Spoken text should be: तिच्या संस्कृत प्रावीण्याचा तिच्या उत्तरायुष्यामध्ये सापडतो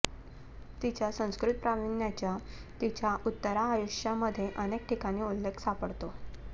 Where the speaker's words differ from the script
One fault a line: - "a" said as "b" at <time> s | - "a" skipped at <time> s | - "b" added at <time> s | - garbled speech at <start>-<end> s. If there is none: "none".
- "अनेक ठिकाणी उल्लेख" added at 4.6 s